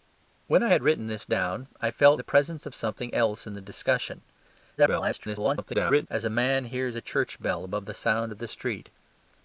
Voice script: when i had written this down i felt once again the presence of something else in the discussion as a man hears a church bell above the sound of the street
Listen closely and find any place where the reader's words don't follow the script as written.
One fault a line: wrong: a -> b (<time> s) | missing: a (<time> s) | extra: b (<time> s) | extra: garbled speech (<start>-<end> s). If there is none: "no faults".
missing: once again (2.2 s)
extra: garbled speech (4.8-6.1 s)